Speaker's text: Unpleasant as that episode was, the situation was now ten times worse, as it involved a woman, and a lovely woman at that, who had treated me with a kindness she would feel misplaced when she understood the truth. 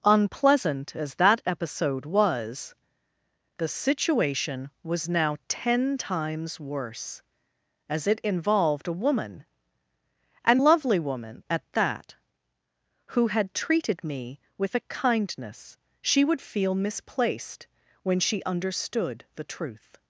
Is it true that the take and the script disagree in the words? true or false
true